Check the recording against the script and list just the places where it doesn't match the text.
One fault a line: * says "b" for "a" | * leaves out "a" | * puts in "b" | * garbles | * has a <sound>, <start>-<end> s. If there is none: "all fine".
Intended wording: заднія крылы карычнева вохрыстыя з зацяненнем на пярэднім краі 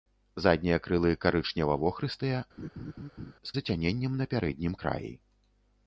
* has a laugh, 2.6-3.3 s